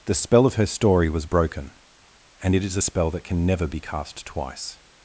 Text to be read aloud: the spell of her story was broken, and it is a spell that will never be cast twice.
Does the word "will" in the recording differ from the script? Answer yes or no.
yes